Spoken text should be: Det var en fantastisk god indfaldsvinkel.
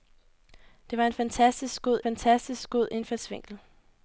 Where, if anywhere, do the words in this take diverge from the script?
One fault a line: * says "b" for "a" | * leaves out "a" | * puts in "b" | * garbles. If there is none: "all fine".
* puts in "fantastisk god"